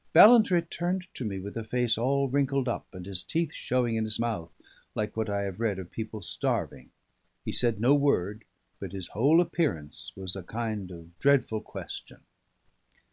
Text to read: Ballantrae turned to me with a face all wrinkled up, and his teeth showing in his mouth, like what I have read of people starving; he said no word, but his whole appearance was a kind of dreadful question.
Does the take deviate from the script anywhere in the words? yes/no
no